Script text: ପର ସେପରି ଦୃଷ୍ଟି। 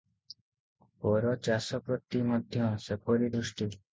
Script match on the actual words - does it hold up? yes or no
no